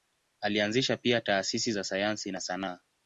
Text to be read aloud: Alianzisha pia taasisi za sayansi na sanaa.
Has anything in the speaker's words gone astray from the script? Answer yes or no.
no